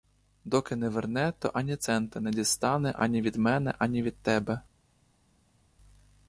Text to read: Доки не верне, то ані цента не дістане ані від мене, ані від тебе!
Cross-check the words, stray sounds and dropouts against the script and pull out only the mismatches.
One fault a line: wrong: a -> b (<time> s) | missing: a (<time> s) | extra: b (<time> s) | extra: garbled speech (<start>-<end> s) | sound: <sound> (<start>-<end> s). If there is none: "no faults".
no faults